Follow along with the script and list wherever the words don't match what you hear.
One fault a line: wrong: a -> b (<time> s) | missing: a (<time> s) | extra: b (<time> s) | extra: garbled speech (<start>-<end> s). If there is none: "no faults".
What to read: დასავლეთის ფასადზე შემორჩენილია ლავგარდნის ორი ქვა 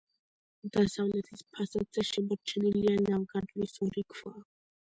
no faults